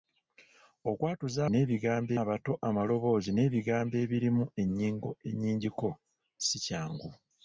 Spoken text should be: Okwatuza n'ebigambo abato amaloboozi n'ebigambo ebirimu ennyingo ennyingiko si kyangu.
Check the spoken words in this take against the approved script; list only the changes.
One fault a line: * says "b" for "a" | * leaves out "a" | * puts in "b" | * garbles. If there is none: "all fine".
all fine